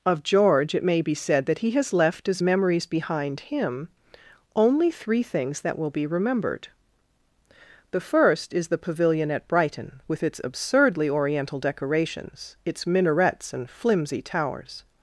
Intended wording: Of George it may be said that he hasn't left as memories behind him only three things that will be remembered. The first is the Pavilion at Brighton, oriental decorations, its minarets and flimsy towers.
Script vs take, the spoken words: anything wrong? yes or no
yes